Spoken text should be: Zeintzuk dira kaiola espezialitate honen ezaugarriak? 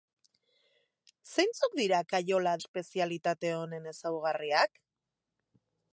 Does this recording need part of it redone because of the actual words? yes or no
no